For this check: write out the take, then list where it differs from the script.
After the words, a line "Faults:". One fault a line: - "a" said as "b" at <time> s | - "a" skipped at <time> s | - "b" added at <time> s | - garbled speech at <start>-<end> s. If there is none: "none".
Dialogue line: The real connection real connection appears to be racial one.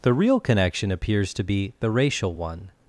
The real connection appears to be the racial one.
Faults:
- "real connection" skipped at 0.9 s
- "the" added at 1.8 s